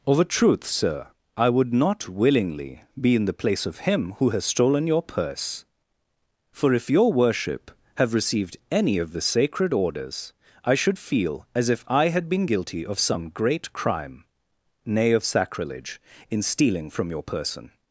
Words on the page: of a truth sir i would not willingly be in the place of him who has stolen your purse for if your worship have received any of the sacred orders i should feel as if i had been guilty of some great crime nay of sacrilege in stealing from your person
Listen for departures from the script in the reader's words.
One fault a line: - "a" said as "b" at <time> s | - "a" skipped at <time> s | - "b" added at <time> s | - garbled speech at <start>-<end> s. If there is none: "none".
none